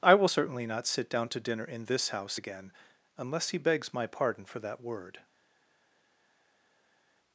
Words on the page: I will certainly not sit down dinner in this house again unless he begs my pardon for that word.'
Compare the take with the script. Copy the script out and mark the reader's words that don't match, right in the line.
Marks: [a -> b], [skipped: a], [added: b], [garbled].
I will certainly not sit down [added: to] dinner in this house again unless he begs my pardon for that word.'